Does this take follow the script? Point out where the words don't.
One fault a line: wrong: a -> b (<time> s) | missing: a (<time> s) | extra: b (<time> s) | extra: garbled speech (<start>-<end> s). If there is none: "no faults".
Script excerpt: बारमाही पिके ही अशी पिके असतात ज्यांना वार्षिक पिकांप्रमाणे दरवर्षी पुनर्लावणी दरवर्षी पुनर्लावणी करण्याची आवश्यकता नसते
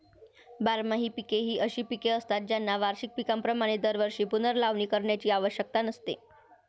missing: दरवर्षी पुनर्लावणी (4.8 s)